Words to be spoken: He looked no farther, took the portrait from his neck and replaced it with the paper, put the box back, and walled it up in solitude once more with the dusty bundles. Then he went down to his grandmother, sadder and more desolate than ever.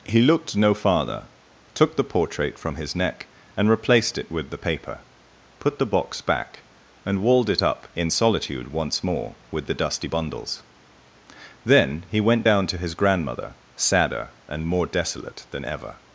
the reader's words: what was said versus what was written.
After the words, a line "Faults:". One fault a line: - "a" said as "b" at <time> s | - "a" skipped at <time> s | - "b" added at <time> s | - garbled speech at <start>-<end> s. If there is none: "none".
He looked no farther, took the portrait from his neck and replaced it with the paper, put the box back, and walled it up in solitude once more with the dusty bundles. Then he went down to his grandmother, sadder and more desolate than ever.
Faults:
none